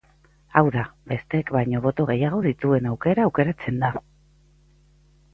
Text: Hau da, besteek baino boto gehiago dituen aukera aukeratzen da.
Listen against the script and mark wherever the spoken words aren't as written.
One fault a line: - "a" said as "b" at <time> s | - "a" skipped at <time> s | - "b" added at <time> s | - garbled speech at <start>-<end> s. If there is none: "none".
none